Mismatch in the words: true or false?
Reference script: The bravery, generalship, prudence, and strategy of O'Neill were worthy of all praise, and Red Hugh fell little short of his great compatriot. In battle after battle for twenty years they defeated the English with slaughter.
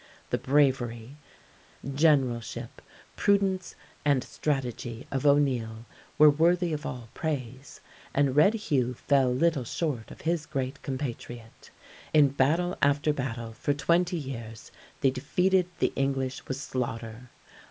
false